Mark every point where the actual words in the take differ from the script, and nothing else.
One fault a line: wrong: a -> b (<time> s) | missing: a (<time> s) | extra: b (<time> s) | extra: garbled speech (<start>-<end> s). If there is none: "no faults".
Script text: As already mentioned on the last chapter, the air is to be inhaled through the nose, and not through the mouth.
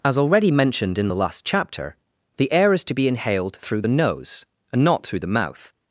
wrong: on -> in (1.0 s)